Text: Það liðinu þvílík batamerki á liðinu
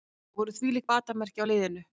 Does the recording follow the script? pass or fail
fail